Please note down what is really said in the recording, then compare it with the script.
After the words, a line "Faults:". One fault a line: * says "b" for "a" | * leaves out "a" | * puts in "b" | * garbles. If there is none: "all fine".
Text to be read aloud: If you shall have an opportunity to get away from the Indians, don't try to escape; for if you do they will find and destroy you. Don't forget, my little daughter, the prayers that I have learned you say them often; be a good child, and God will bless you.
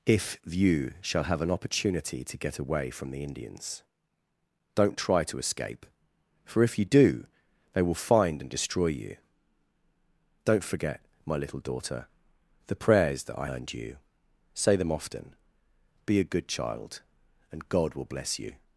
If you shall have an opportunity to get away from the Indians, don't try to escape; for if you do they will find and destroy you. Don't forget, my little daughter, the prayers that I learned you say them often; be a good child, and God will bless you.
Faults:
* leaves out "have"